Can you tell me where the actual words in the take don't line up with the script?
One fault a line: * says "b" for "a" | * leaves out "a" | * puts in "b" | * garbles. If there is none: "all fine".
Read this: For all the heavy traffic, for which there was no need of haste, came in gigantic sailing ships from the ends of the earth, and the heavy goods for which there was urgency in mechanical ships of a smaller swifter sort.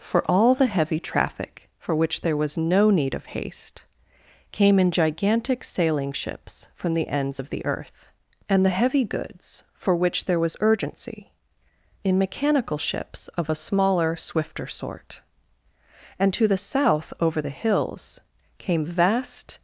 * puts in "And to the south over the hills came vast"